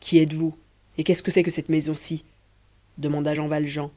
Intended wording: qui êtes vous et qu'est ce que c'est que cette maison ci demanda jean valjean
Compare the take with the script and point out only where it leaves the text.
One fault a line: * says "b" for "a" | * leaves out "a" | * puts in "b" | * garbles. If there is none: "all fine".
all fine